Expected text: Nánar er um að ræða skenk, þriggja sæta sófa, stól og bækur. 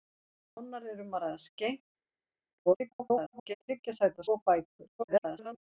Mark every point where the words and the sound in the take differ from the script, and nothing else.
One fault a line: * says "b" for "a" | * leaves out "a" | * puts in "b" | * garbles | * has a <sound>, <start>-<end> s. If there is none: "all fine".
* garbles
* leaves out "sófa stól"
* garbles